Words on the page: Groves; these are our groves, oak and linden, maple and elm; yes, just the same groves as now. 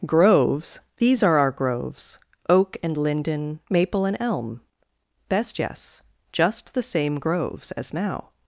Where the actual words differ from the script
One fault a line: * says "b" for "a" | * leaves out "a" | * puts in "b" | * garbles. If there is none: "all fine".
* puts in "best"